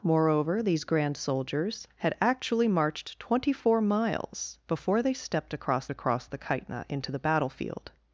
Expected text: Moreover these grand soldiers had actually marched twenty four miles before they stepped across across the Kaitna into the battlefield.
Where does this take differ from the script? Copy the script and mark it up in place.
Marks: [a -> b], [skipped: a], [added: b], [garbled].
Moreover these grand soldiers had actually marched twenty four miles before they stepped across across the Kaitna into the battlefield.